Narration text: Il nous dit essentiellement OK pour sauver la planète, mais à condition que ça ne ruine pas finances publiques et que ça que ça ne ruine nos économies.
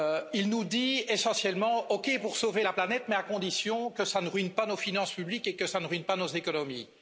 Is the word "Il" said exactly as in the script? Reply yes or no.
yes